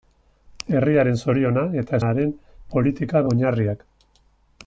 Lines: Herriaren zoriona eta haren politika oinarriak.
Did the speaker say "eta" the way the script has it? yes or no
yes